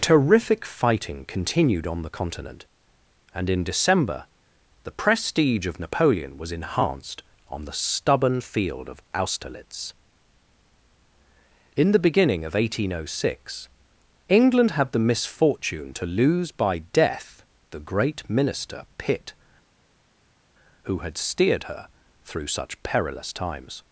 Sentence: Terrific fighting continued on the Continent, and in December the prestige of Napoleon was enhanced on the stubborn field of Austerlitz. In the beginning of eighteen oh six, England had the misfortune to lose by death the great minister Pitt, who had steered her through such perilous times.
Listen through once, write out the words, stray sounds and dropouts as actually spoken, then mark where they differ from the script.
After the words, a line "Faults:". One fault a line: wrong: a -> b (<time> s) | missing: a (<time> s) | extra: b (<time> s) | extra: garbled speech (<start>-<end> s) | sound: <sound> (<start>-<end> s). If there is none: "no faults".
Terrific fighting continued on the Continent, and in December the prestige of Napoleon was enhanced on the stubborn field of Austerlitz. In the beginning of eighteen oh six, England had the misfortune to lose by death the great minister Pitt, who had steered her through such perilous times.
Faults:
no faults